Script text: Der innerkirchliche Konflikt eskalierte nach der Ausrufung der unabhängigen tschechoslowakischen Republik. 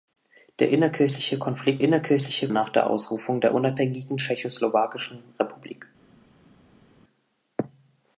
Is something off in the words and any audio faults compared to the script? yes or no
yes